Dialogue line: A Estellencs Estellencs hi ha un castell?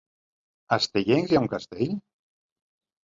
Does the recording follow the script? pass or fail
fail